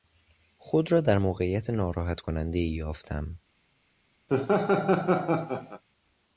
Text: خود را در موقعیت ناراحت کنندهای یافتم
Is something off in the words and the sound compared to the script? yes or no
yes